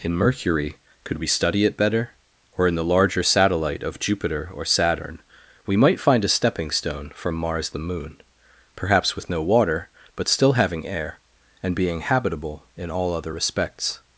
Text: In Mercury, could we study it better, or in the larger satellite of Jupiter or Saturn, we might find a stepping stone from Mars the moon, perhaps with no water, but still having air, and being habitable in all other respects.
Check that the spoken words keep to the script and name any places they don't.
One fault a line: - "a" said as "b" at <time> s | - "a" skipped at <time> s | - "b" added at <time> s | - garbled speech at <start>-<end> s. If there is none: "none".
none